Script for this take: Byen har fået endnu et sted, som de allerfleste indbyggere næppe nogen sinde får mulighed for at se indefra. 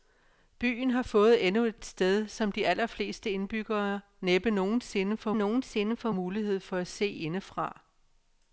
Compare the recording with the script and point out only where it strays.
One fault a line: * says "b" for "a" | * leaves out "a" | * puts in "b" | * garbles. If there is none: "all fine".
* puts in "nogen sinde får"